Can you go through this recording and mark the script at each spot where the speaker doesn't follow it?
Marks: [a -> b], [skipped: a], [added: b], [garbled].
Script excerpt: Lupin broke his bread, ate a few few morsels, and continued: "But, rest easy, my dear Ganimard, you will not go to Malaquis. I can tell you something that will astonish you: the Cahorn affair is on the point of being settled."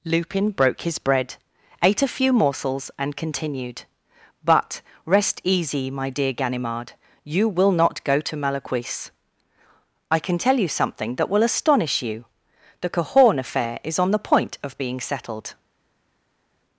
Lupin broke his bread, ate a few [skipped: few] morsels, and continued: "But, rest easy, my dear Ganimard, you will not go to Malaquis. I can tell you something that will astonish you: the Cahorn affair is on the point of being settled."